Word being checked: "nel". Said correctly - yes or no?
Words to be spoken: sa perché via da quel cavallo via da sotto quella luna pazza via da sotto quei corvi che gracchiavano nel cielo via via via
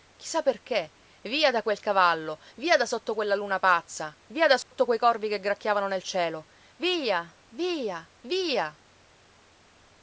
yes